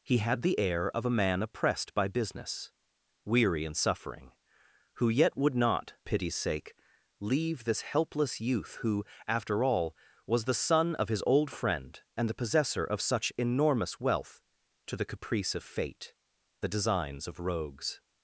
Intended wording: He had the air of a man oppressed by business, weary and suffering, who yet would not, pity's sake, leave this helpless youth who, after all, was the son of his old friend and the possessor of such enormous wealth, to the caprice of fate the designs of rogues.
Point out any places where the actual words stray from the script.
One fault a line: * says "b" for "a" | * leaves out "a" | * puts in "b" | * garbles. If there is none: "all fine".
all fine